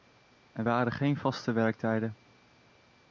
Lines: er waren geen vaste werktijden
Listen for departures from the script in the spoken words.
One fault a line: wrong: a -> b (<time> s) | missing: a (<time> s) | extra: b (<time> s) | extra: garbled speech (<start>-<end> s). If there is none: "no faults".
no faults